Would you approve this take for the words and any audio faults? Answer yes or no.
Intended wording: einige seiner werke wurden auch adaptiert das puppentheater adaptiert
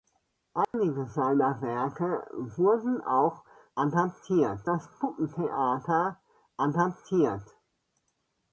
no